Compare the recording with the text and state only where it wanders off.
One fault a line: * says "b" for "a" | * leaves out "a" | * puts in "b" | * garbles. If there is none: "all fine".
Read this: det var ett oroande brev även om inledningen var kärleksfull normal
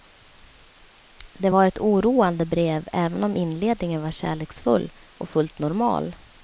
* puts in "och fullt"